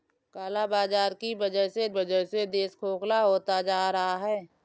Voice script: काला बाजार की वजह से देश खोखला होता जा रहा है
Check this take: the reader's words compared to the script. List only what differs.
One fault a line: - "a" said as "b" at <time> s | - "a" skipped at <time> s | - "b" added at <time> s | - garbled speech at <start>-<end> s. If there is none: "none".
- "वजह से" added at 1.9 s